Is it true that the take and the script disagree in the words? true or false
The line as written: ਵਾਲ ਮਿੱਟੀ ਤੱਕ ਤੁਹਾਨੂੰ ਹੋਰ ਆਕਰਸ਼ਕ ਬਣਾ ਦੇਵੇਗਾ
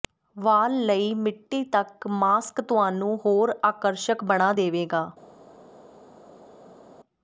true